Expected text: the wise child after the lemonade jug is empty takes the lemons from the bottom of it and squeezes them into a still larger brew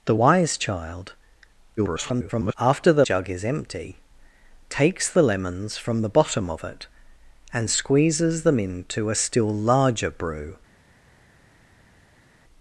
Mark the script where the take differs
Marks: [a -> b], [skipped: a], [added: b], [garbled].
the wise child [garbled] after the [skipped: lemonade] jug is empty takes the lemons from the bottom of it and squeezes them into a still larger brew